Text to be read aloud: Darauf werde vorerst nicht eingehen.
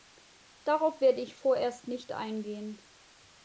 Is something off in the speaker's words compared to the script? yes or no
yes